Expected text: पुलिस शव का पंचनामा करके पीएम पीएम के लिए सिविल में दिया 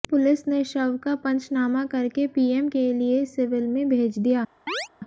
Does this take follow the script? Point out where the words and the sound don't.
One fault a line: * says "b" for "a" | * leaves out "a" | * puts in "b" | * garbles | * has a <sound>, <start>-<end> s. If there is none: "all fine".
* puts in "ने"
* leaves out "पीएम"
* puts in "भेज"
* has a chirp, 4.7-4.9 s